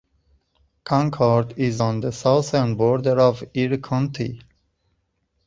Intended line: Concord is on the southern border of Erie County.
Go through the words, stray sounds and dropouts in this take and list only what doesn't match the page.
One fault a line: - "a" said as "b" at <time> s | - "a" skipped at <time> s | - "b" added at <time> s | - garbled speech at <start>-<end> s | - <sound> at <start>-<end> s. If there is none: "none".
none